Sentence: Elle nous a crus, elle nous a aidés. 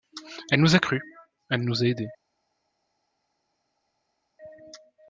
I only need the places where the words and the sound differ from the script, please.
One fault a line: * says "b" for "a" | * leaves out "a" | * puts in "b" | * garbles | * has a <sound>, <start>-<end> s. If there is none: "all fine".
all fine